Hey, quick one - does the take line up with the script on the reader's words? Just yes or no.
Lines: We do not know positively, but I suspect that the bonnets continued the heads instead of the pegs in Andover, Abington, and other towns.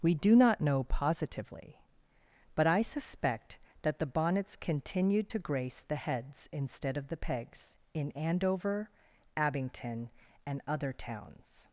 no